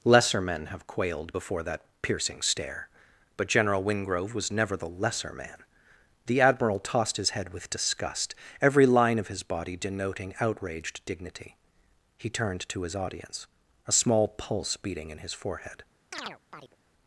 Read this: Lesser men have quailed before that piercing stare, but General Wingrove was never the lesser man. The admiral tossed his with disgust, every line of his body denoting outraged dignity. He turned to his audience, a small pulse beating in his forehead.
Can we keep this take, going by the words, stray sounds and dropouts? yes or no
no